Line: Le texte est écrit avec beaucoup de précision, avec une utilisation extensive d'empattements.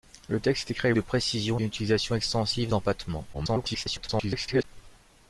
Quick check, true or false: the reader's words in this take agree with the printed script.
false